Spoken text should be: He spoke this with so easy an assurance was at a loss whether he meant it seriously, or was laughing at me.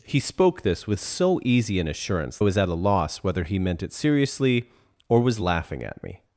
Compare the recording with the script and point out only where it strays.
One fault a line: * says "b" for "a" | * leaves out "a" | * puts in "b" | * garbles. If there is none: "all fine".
all fine